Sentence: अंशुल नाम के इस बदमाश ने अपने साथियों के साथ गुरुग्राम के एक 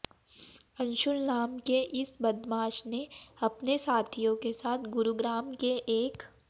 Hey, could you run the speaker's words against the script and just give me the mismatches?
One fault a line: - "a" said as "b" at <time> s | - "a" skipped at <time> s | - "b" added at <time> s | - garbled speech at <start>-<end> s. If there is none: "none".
none